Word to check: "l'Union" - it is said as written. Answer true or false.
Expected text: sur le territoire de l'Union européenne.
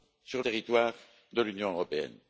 true